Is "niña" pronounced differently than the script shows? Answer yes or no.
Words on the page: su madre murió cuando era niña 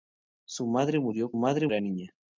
no